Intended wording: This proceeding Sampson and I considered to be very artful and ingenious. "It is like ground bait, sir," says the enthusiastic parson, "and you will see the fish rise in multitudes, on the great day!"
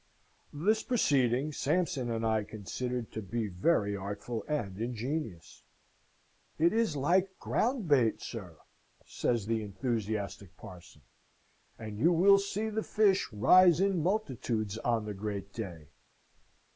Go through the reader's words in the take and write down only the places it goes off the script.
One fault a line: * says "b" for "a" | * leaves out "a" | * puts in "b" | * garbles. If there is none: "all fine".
all fine